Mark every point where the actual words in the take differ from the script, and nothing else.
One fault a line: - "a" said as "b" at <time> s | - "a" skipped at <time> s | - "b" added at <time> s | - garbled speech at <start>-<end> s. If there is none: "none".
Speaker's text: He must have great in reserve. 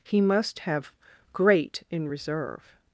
none